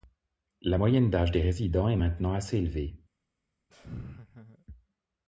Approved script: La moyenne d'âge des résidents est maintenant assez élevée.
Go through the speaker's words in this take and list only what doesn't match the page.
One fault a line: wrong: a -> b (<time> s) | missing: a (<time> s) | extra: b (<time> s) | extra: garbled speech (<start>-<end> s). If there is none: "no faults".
no faults